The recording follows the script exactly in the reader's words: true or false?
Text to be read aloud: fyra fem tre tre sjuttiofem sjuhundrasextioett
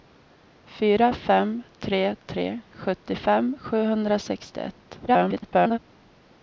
false